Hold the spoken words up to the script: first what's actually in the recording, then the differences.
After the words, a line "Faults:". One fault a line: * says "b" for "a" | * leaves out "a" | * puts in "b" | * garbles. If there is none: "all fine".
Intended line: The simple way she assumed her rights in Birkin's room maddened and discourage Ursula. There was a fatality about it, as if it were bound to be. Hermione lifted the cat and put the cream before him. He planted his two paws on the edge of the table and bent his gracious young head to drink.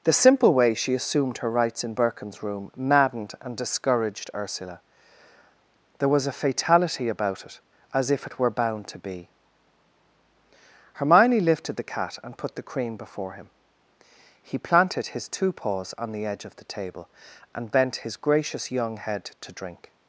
The simple way she assumed her rights in Birkin's room maddened and discouraged Ursula. There was a fatality about it, as if it were bound to be. Hermione lifted the cat and put the cream before him. He planted his two paws on the edge of the table and bent his gracious young head to drink.
Faults:
* says "discouraged" for "discourage"